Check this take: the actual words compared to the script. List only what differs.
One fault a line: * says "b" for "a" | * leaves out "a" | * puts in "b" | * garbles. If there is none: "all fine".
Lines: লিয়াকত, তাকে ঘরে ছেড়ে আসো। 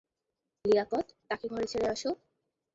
all fine